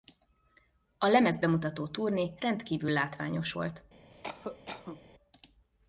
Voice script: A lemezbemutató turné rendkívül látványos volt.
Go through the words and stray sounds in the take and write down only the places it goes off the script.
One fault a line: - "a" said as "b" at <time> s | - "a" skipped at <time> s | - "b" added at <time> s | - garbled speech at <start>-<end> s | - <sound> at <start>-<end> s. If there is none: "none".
- cough at 4.1-5.0 s